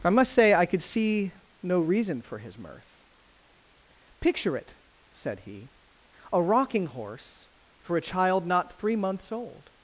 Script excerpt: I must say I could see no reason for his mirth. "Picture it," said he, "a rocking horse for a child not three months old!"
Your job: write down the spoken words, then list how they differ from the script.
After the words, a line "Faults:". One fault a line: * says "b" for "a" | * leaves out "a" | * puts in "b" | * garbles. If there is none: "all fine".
I must say I could see no reason for his mirth. "Picture it," said he, "a rocking horse for a child not three months old!"
Faults:
all fine